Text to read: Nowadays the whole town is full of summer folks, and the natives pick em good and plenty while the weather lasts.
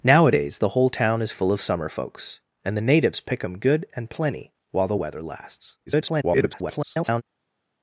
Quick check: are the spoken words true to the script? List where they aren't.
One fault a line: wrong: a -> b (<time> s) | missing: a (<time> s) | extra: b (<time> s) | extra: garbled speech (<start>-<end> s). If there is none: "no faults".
extra: garbled speech (5.9-7.2 s)